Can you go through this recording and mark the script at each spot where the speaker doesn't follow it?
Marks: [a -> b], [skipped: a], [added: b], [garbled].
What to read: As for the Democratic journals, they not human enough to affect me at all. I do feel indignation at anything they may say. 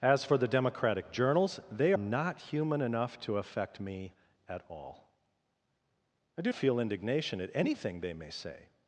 As for the Democratic journals, they not human enough to affect me at all. I do feel indignation at anything they may say.